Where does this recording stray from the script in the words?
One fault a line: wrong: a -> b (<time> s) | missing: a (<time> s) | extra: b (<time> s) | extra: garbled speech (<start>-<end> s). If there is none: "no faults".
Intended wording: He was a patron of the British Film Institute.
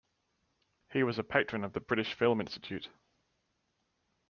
no faults